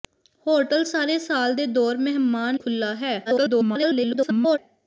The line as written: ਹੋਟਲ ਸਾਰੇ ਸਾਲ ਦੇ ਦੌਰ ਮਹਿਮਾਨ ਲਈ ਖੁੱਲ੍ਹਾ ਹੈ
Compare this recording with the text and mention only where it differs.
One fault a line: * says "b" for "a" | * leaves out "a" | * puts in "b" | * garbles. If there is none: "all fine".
* leaves out "ਲਈ"
* garbles